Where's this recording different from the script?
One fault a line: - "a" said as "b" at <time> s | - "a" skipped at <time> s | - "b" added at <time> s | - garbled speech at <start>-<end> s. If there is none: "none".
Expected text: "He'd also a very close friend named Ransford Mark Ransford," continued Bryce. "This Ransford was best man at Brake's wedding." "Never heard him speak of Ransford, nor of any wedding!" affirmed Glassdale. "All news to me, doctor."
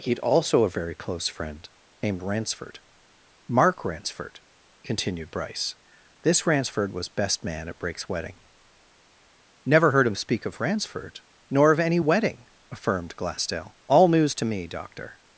none